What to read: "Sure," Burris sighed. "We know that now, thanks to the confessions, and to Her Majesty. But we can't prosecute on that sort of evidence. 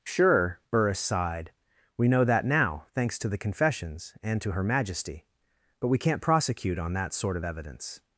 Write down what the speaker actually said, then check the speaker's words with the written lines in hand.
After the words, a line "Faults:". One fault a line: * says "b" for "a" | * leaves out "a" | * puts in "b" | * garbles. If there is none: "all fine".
"Sure," Burris sighed. "We know that now, thanks to the confessions, and to Her Majesty. But we can't prosecute on that sort of evidence.
Faults:
all fine